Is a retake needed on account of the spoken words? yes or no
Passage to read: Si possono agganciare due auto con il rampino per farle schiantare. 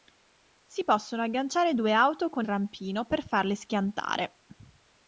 yes